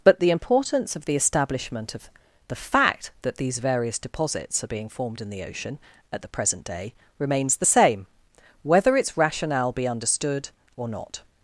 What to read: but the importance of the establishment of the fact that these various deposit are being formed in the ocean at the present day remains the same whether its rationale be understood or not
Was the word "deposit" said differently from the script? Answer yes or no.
yes